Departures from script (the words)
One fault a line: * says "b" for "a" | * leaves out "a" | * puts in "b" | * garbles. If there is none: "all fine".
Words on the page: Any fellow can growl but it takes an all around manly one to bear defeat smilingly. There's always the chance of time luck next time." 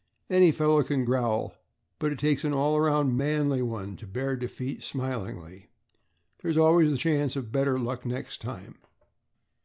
* says "better" for "time"